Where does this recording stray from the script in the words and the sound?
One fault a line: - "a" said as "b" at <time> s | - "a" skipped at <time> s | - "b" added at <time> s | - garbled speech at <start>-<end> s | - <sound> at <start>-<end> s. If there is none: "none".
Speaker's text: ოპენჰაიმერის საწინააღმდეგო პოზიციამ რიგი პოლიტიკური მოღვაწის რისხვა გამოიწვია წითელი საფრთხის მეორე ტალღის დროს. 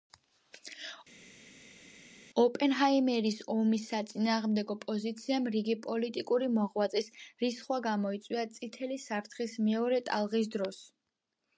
- "ომის" added at 3.5 s